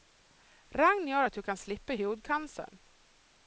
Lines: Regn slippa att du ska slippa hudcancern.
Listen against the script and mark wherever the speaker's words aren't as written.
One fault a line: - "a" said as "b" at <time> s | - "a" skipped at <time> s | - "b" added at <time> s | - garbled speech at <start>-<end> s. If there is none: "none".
- "slippa" said as "gör" at 1.1 s
- "ska" said as "kan" at 1.4 s